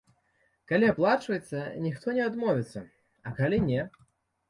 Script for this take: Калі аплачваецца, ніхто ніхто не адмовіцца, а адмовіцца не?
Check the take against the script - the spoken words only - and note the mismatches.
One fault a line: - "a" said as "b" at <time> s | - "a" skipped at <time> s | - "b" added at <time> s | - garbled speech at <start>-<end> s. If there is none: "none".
- "ніхто" skipped at 2.1 s
- "адмовіцца" said as "калі" at 3.5 s